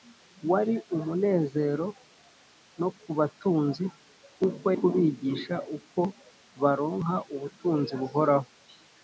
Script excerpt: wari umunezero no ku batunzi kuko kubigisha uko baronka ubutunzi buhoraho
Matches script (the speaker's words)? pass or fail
pass